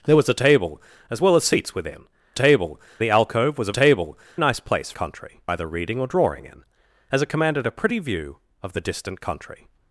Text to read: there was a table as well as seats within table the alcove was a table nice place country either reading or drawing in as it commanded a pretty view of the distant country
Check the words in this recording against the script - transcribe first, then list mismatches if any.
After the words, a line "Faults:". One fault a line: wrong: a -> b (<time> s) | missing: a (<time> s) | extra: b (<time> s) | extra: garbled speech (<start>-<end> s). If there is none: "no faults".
there was a table as well as seats within table the alcove was a table nice place country either reading or drawing in as it commanded a pretty view of the distant country
Faults:
no faults